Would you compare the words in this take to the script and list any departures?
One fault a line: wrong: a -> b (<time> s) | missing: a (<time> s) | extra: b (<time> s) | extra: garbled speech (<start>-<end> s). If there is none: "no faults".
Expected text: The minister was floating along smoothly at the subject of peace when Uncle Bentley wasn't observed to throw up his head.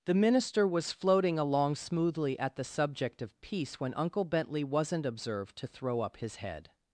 no faults